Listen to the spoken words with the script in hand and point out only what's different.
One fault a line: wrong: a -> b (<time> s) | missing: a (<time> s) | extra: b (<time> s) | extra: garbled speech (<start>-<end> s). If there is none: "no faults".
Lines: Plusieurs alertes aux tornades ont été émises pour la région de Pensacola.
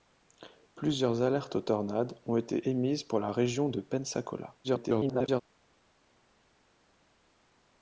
extra: garbled speech (4.6-5.4 s)